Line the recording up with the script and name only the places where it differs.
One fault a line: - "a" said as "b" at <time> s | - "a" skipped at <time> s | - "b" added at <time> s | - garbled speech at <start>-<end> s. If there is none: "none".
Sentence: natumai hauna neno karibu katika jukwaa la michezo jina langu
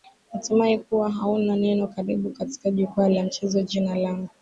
- "kuwa" added at 0.8 s